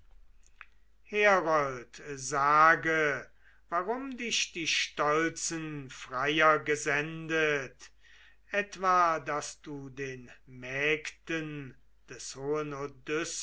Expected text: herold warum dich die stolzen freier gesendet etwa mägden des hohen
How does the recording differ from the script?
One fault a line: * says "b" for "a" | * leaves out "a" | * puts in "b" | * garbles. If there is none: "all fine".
* puts in "sage"
* puts in "daß du den"